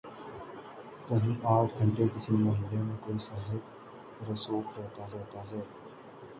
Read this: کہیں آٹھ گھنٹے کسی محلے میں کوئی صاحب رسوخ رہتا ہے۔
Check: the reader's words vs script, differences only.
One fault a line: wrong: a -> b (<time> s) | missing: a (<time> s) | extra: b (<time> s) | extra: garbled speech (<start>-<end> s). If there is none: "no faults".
extra: رہتا (5.1 s)